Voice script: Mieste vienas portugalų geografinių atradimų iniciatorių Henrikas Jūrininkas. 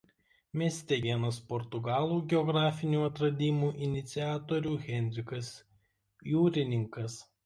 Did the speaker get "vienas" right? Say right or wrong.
right